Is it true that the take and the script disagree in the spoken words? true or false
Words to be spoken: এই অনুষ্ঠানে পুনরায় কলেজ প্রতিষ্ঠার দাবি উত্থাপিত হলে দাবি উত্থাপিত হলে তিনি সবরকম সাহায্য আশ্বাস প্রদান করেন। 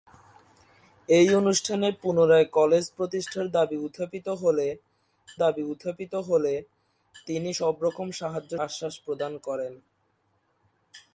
false